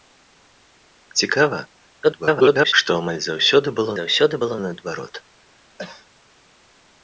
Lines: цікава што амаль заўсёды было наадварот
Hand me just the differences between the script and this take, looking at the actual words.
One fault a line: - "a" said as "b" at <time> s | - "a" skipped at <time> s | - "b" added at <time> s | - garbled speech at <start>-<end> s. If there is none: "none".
- garbled speech at 2.0-2.7 s
- "заўсёды было" added at 4.0 s